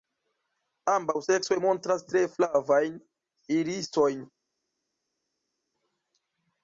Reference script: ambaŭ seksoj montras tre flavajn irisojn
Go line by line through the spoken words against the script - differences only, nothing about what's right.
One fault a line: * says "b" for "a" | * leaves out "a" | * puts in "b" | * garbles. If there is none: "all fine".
all fine